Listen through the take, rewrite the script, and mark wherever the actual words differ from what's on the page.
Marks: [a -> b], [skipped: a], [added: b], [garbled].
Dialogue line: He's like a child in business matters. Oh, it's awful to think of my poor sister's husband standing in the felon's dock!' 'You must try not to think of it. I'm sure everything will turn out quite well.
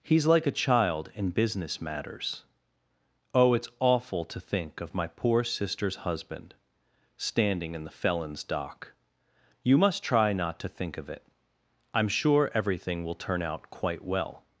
He's like a child in business matters. Oh, it's awful to think of my poor sister's husband standing in the felon's dock!' 'You must try not to think of it. I'm sure everything will turn out quite well.